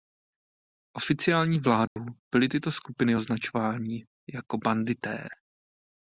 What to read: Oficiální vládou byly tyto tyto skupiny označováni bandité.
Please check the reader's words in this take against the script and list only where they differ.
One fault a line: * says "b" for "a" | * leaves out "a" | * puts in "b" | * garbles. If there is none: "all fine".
* leaves out "tyto"
* puts in "jako"